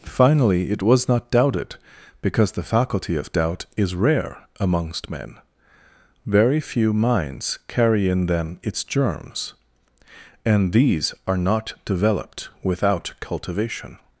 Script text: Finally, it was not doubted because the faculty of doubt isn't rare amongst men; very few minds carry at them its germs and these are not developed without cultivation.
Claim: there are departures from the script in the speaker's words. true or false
true